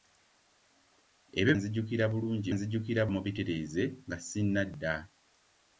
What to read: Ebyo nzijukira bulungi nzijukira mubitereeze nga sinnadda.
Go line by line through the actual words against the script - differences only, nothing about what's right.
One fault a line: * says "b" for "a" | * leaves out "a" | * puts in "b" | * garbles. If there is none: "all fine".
all fine